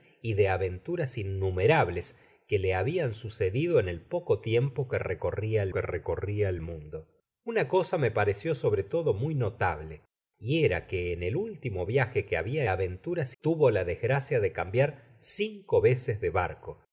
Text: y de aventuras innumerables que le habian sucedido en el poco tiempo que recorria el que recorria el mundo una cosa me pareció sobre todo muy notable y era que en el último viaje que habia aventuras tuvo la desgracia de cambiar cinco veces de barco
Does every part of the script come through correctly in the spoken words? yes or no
yes